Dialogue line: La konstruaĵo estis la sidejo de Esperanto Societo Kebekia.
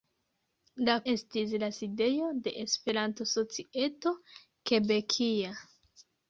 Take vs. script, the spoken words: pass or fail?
fail